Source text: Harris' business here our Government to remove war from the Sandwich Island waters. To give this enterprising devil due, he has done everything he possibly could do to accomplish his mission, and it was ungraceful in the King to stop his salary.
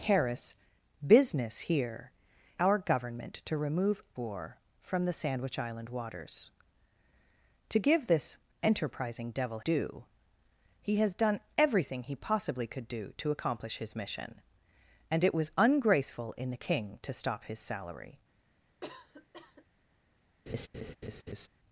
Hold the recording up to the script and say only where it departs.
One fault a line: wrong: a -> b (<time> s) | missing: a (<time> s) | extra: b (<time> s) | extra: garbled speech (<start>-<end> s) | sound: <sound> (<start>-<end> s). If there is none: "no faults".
sound: cough (18.8-19.6 s)
sound: laugh (20.5-21.5 s)